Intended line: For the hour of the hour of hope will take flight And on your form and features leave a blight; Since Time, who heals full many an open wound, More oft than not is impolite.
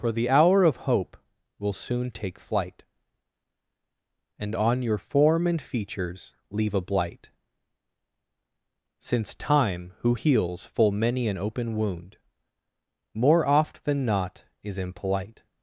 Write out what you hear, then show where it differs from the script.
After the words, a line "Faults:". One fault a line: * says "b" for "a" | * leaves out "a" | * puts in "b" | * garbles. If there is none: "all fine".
For the hour of hope will soon take flight And on your form and features leave a blight; Since Time, who heals full many an open wound, More oft than not is impolite.
Faults:
* leaves out "the hour of"
* puts in "soon"